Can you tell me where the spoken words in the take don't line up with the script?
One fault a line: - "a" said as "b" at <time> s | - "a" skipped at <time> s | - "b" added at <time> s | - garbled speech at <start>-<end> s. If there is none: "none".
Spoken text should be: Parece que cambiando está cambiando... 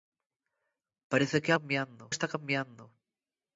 none